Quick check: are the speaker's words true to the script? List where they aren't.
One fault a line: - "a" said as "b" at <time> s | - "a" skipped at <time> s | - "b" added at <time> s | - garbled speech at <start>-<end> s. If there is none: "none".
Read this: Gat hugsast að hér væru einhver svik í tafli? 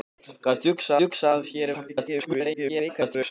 - "hugsast" added at 1.0 s
- "væru einhver svik" skipped at 1.7 s
- garbled speech at 1.9-3.3 s